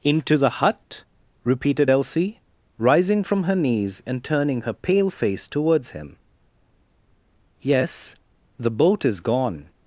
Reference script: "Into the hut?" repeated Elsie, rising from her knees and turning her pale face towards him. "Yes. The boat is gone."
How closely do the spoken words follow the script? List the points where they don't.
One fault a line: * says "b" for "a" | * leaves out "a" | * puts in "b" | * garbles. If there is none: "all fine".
all fine